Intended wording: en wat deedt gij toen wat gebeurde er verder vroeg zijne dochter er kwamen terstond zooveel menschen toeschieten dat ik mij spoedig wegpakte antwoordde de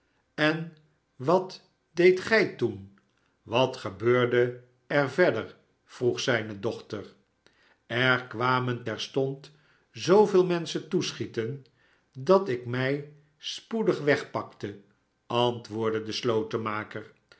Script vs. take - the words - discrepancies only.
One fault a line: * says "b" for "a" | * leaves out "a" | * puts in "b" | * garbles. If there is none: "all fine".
all fine